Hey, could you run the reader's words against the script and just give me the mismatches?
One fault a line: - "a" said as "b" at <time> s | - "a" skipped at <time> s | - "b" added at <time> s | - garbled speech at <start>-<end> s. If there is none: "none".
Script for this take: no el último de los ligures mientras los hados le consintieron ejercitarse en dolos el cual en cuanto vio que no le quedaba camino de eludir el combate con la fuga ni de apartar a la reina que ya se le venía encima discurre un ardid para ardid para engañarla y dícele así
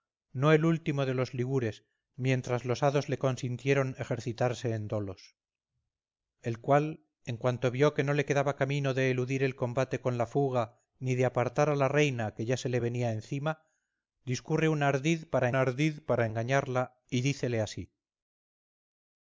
none